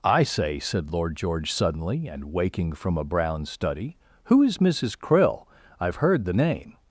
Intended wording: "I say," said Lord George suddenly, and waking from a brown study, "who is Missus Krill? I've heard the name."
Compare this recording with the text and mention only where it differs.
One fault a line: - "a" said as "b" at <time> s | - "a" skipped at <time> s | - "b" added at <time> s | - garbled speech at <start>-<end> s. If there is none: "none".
none